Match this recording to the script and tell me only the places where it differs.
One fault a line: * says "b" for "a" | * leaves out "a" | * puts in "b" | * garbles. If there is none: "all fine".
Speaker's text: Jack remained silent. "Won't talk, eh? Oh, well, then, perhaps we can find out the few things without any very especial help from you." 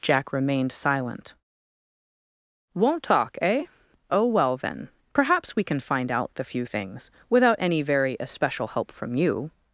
all fine